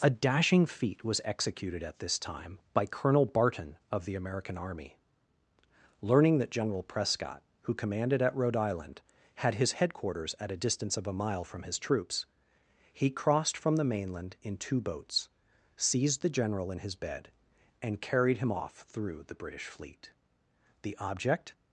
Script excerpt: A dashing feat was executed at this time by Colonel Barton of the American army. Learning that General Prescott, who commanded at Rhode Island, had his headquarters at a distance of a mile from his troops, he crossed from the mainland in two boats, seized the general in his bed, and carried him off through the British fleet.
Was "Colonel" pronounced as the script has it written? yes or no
yes